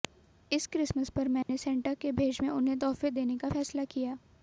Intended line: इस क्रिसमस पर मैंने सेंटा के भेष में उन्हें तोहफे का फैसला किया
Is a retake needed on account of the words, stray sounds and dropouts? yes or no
yes